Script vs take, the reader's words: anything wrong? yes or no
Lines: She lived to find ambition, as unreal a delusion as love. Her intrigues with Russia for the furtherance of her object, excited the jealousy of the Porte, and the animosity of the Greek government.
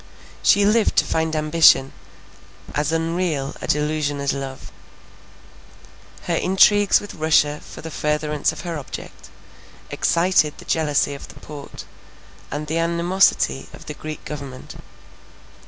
no